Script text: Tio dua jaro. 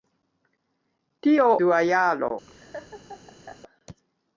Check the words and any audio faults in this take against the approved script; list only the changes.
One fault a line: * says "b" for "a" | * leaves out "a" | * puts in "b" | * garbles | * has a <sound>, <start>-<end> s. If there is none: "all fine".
* has a laugh, 2.5-3.6 s